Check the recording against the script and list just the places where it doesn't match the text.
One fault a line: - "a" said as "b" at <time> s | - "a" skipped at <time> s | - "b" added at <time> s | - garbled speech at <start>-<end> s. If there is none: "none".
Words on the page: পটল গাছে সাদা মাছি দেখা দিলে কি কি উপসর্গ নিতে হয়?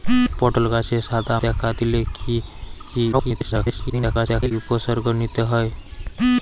- "মাছি" skipped at 1.4 s
- garbled speech at 3.1-4.5 s